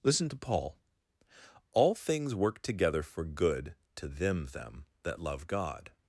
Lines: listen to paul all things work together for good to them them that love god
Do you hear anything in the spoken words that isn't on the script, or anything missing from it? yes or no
no